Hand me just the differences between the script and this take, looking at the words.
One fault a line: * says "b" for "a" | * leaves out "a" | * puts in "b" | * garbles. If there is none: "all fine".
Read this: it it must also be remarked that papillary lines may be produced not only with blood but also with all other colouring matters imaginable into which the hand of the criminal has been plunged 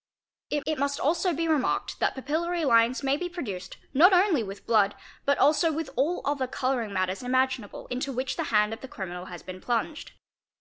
all fine